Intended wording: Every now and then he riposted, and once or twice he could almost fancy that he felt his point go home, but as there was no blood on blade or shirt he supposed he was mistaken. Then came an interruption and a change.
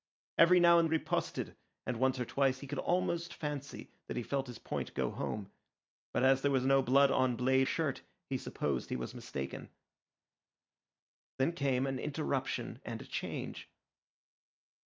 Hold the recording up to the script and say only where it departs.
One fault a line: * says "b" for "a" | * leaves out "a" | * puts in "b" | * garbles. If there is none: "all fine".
* leaves out "then he"
* leaves out "or"